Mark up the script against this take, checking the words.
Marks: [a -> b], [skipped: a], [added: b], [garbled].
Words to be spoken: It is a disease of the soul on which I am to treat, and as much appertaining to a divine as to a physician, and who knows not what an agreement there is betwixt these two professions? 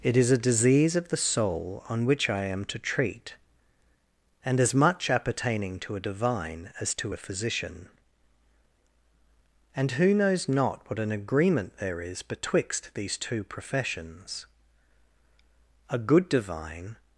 It is a disease of the soul on which I am to treat, and as much appertaining to a divine as to a physician, and who knows not what an agreement there is betwixt these two professions? [added: A good divine]